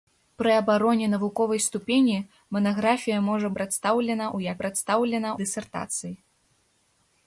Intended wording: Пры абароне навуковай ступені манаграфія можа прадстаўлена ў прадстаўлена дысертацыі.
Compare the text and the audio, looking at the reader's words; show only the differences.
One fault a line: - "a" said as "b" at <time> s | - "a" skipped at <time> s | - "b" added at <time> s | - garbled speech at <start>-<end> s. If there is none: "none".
none